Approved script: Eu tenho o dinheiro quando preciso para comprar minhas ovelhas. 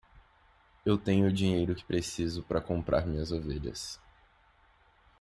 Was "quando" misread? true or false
true